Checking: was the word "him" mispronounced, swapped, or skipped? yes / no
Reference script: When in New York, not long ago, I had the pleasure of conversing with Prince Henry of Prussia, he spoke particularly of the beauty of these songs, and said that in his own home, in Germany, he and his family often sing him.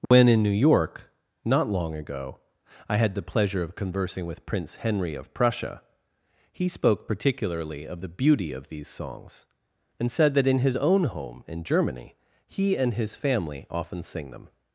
yes